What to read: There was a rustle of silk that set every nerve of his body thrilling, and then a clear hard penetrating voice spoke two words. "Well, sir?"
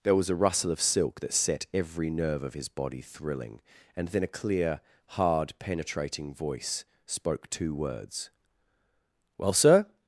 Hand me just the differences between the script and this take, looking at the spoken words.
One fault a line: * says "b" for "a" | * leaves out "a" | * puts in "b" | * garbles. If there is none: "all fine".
all fine